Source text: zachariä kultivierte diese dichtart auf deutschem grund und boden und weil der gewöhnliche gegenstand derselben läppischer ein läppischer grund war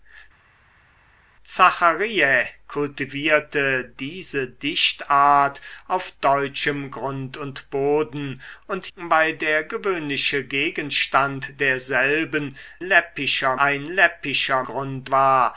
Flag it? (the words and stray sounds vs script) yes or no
no